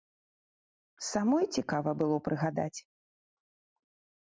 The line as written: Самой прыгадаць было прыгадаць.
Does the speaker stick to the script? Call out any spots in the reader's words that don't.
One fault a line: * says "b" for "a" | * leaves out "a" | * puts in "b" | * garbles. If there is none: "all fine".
* says "цікава" for "прыгадаць"